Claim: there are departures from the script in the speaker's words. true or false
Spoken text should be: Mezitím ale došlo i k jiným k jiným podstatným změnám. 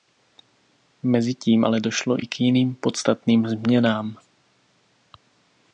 true